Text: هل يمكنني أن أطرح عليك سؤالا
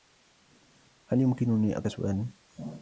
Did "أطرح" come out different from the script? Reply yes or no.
yes